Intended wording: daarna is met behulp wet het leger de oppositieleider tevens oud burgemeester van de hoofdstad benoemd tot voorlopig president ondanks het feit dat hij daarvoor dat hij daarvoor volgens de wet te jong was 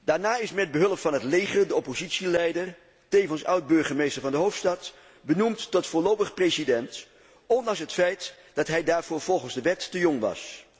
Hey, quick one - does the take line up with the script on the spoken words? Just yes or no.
no